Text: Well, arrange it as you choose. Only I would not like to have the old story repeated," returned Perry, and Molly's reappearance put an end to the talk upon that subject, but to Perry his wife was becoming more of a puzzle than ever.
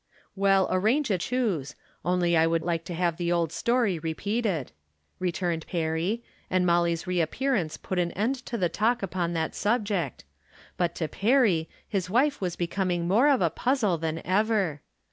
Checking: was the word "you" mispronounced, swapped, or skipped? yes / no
yes